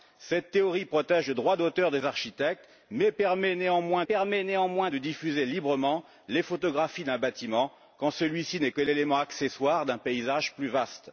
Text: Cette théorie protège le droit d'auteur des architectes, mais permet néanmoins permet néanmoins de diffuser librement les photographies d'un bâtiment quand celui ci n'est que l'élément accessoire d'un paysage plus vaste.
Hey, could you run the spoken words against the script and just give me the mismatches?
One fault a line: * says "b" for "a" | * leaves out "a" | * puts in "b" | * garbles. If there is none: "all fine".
all fine